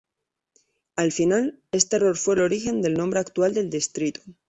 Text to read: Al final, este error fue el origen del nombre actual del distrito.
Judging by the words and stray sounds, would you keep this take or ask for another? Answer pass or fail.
pass